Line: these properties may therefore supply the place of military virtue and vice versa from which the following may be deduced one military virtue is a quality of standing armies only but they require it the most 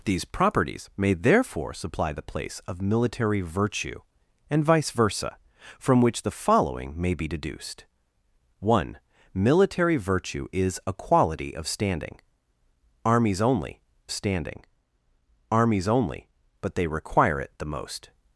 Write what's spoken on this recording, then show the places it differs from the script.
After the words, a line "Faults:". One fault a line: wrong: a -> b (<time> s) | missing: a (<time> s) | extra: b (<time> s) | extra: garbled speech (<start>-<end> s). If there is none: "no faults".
these properties may therefore supply the place of military virtue and vice versa from which the following may be deduced one military virtue is a quality of standing armies only standing armies only but they require it the most
Faults:
extra: standing armies only (14.1 s)